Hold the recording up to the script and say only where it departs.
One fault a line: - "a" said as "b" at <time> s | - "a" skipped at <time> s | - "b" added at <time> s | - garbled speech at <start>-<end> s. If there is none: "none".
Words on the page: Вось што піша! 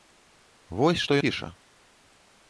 none